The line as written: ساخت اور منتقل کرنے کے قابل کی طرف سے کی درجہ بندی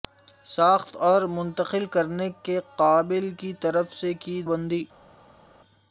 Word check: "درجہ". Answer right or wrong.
wrong